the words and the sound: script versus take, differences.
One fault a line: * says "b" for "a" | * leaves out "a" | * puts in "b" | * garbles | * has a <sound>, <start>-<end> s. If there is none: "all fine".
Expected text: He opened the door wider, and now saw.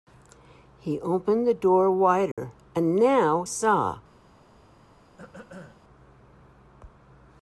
* has a dropout, 2.3-2.4 s
* has a throat clearing, 5.2-5.8 s